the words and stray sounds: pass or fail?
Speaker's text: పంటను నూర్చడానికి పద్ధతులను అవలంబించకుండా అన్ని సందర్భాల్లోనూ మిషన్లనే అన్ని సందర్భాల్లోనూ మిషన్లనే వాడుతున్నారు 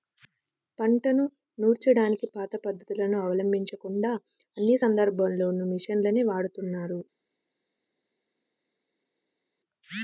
fail